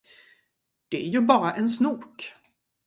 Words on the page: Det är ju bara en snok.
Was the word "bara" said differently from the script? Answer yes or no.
no